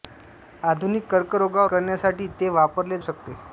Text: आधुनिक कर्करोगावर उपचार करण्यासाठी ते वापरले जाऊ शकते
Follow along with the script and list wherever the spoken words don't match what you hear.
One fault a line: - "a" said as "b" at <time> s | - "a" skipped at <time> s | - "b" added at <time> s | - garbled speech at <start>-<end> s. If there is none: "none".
- "उपचार" skipped at 1.7 s
- "जाऊ" skipped at 3.0 s